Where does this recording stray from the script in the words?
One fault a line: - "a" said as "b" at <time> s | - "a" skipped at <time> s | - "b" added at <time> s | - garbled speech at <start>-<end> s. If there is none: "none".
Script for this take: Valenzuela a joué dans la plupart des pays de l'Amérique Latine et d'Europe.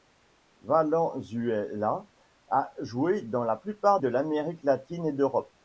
- "des pays" skipped at 4.0 s